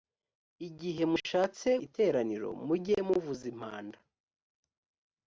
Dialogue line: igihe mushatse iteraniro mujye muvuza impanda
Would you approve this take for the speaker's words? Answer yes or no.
yes